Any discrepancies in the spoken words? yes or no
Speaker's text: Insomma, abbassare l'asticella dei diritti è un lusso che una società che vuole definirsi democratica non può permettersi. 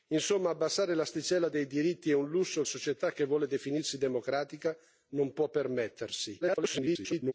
yes